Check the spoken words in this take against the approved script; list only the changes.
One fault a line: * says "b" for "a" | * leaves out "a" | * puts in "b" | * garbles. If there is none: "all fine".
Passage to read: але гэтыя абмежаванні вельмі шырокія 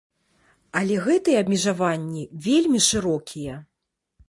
all fine